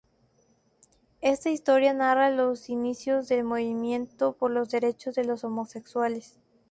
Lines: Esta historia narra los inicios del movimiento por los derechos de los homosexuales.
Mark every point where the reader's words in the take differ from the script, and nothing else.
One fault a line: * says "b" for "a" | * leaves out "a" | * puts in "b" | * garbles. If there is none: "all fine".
all fine